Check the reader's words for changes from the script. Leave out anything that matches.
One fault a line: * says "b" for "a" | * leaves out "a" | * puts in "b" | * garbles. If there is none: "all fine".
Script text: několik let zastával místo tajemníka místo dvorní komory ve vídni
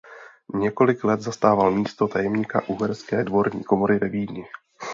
* says "uherské" for "místo"